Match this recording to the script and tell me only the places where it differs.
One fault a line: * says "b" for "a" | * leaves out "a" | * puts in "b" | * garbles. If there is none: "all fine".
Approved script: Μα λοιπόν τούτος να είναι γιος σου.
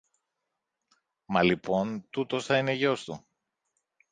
* says "θα" for "να"
* says "του" for "σου"